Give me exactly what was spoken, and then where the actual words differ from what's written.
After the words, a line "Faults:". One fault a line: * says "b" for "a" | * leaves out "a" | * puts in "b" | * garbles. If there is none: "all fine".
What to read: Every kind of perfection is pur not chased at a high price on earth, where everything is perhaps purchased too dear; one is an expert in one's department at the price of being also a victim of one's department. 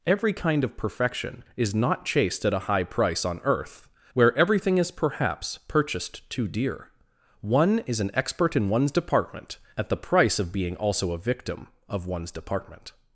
Every kind of perfection is not chased at a high price on earth, where everything is perhaps purchased too dear; one is an expert in one's department at the price of being also a victim of one's department.
Faults:
* leaves out "pur"